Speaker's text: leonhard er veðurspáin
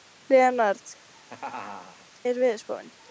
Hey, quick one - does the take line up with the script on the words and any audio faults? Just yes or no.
no